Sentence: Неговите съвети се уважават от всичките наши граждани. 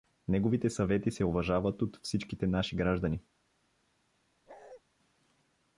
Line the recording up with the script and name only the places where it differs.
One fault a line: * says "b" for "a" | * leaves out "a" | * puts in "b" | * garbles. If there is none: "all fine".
all fine